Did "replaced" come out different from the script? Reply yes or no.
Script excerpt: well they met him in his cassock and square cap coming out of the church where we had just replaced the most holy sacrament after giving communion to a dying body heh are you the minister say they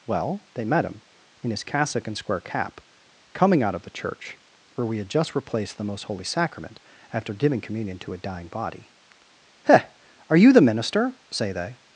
no